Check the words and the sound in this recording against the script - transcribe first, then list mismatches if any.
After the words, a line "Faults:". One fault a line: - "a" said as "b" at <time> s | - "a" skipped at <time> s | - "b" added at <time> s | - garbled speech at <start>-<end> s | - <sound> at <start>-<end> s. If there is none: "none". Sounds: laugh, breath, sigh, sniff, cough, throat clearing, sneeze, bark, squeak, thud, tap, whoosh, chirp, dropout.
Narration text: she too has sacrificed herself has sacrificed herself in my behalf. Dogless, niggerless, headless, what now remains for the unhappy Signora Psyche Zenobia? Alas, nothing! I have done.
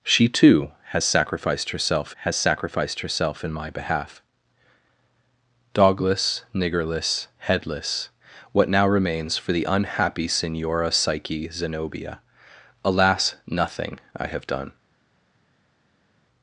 she too has sacrificed herself has sacrificed herself in my behalf. Dogless, niggerless, headless, what now remains for the unhappy Signora Psyche Zenobia? Alas, nothing! I have done.
Faults:
none